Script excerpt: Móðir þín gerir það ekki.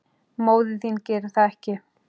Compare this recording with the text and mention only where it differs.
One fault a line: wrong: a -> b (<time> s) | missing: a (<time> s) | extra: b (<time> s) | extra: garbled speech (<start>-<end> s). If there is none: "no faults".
no faults